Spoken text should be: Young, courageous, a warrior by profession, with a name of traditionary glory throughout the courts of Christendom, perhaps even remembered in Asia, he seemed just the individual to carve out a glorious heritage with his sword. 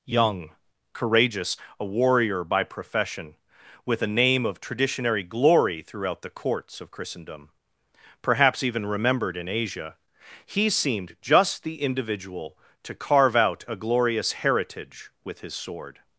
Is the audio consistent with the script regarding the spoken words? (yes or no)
yes